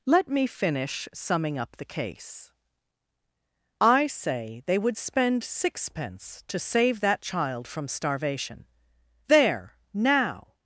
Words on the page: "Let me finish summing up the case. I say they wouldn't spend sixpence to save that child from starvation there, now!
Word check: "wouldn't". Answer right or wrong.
wrong